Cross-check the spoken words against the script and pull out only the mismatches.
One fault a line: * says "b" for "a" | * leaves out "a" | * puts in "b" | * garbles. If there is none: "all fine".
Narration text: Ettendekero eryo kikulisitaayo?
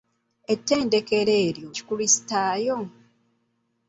all fine